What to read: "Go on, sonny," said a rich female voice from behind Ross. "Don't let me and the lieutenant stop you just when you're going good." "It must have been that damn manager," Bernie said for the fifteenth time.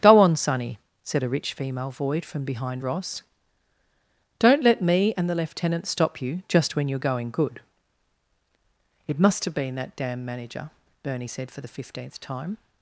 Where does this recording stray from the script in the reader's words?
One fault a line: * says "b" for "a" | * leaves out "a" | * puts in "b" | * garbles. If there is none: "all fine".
* says "void" for "voice"